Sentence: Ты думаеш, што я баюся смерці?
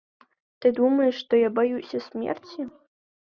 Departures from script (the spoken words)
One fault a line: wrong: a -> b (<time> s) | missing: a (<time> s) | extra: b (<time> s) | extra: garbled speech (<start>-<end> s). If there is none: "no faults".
no faults